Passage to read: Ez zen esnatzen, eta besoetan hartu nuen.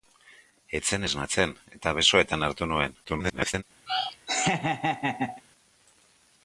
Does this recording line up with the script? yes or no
no